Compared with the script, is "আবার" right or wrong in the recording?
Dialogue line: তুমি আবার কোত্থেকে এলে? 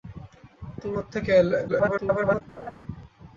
wrong